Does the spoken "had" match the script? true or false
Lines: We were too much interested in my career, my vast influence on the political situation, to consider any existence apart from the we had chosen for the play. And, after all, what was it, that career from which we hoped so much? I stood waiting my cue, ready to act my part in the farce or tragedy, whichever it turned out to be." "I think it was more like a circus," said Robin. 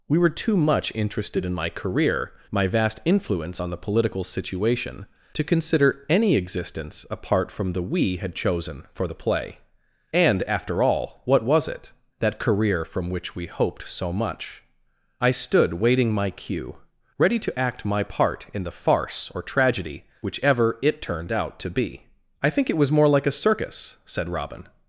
true